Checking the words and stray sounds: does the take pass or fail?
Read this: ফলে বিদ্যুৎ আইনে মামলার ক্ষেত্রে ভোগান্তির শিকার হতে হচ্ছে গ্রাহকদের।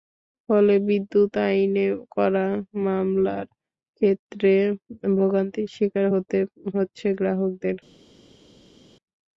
fail